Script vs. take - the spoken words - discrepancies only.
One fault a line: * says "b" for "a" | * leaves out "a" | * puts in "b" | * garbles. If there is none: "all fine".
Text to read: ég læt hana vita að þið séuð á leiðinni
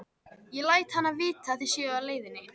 all fine